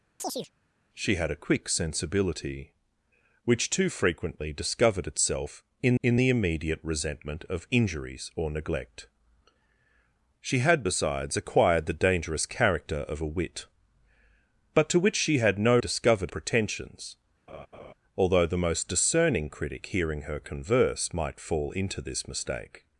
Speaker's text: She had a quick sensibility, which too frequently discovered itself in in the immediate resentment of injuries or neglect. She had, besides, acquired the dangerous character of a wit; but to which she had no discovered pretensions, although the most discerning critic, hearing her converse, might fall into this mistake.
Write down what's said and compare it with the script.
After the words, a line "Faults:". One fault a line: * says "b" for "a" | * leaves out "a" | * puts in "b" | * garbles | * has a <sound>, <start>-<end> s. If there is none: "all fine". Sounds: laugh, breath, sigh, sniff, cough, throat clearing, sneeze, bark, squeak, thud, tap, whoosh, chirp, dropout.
She had a quick sensibility, which too frequently discovered itself in in the immediate resentment of injuries or neglect. She had, besides, acquired the dangerous character of a wit; but to which she had no discovered pretensions, although the most discerning critic, hearing her converse, might fall into this mistake.
Faults:
* has a chirp, 0.2-0.5 s
* has a laugh, 17.5-17.9 s